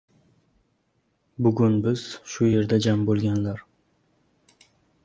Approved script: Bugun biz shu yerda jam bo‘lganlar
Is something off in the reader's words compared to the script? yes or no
no